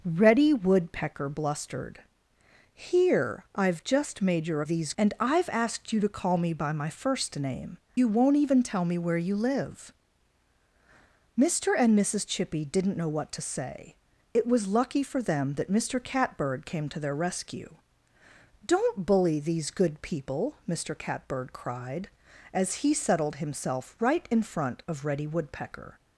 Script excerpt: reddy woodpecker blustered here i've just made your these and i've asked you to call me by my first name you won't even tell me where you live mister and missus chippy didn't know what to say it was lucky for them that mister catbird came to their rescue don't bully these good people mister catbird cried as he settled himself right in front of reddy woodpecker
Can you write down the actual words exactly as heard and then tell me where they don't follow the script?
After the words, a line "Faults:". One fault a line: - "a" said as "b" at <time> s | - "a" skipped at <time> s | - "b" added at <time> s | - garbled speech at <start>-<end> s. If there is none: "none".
reddy woodpecker blustered here i've just made your these and i've asked you to call me by my first name you won't even tell me where you live mister and missus chippy didn't know what to say it was lucky for them that mister catbird came to their rescue don't bully these good people mister catbird cried as he settled himself right in front of reddy woodpecker
Faults:
none